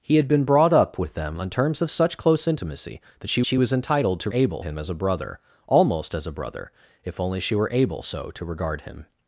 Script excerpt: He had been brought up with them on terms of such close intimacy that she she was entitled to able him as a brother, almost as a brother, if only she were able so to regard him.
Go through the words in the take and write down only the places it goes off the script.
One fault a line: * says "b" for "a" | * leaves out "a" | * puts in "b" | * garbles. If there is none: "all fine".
all fine